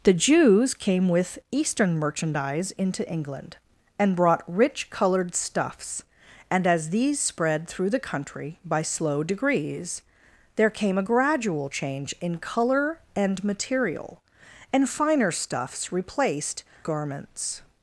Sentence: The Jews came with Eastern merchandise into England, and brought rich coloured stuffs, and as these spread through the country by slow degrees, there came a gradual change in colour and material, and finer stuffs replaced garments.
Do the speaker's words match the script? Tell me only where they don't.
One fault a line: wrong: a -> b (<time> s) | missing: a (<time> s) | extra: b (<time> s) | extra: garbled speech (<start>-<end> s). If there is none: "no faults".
no faults